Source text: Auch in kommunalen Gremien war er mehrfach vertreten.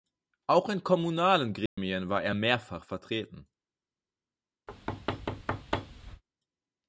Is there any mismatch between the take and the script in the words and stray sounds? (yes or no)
yes